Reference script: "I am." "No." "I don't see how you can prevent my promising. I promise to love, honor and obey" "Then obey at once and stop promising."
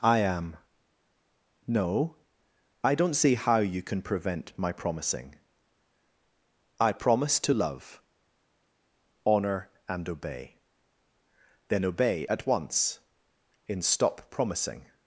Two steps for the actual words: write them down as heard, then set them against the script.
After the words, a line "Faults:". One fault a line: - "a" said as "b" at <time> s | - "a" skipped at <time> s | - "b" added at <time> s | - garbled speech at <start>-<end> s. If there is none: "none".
"I am." "No." "I don't see how you can prevent my promising. I promise to love, honor and obey" "Then obey at once in stop promising."
Faults:
- "and" said as "in" at 13.7 s